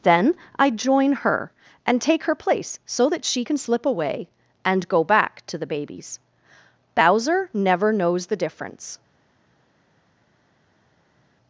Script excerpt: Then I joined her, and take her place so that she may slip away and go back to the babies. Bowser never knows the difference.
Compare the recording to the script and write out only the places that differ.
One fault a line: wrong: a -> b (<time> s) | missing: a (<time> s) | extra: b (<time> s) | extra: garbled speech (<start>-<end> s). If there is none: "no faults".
wrong: joined -> join (0.7 s)
wrong: may -> can (3.4 s)